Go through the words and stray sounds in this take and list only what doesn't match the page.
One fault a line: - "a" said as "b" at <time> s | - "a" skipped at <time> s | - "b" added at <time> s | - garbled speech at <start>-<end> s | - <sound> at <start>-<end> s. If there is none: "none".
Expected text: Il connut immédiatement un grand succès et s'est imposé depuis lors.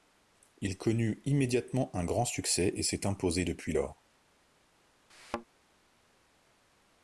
- thud at 5.1-5.4 s